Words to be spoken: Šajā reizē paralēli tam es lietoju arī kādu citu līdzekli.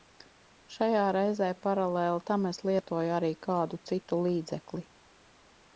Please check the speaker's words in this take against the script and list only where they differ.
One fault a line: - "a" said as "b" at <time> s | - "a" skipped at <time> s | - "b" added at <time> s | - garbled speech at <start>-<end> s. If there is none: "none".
none